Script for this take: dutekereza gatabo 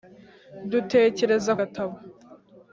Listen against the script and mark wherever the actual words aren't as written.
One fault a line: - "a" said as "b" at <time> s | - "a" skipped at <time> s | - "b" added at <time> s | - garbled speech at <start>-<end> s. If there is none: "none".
none